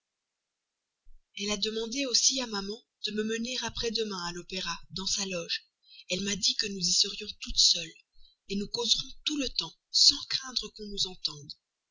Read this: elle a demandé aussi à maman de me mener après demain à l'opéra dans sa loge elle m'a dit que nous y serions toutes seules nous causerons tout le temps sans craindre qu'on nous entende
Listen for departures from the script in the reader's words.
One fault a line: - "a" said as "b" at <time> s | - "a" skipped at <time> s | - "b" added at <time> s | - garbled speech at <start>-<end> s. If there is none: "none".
none